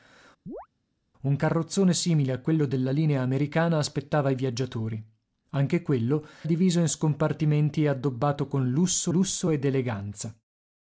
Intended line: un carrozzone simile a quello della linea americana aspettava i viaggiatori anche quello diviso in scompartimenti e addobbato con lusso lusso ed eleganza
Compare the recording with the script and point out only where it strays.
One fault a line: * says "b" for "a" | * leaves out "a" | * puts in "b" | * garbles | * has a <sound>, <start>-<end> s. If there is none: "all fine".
* has a chirp, 0.5-0.7 s